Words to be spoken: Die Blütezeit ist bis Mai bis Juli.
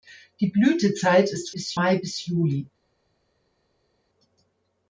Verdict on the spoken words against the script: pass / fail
pass